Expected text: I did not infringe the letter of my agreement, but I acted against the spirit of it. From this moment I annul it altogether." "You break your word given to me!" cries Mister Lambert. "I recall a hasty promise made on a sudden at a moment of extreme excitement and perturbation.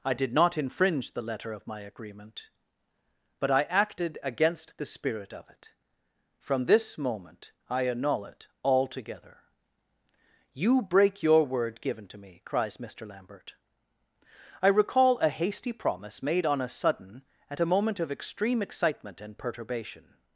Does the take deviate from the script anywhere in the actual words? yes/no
no